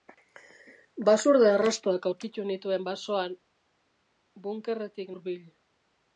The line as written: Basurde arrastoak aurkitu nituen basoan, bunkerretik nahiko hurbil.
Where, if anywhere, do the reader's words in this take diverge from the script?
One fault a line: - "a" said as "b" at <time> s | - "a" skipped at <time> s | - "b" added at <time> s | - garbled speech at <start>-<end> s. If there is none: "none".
- "nahiko" skipped at 5.1 s